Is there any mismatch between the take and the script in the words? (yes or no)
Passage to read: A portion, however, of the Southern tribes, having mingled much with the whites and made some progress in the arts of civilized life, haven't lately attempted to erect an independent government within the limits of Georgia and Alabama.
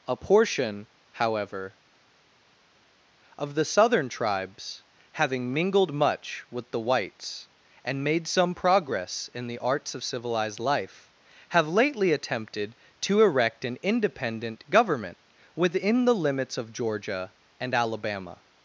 yes